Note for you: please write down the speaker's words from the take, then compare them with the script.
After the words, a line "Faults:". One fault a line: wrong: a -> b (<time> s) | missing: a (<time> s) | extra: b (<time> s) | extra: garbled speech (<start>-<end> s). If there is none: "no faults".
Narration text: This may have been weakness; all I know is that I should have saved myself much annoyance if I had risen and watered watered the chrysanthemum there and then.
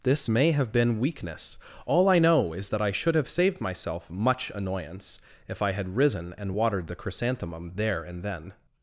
This may have been weakness; all I know is that I should have saved myself much annoyance if I had risen and watered the chrysanthemum there and then.
Faults:
missing: watered (6.9 s)